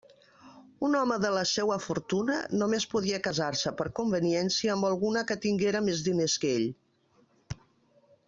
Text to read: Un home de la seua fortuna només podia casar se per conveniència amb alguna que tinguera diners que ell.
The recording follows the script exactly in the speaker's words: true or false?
false